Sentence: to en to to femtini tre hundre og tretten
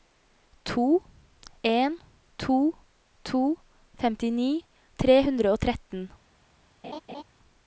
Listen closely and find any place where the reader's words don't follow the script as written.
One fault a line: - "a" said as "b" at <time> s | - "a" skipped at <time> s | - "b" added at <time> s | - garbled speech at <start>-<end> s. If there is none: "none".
none